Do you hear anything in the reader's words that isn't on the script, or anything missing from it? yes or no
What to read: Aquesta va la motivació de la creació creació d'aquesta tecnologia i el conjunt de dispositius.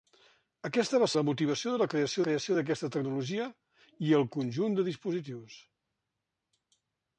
no